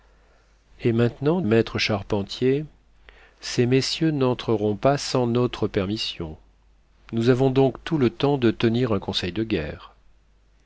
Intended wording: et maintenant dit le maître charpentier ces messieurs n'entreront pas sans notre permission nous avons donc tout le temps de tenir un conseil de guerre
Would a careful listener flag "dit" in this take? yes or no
yes